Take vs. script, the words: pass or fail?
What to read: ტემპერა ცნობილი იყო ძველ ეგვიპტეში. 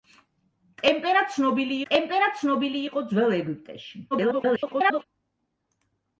fail